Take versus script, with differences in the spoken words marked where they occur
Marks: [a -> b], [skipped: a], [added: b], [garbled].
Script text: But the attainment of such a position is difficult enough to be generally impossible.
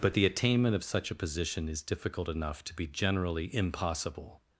But the attainment of such a position is difficult enough to be generally impossible.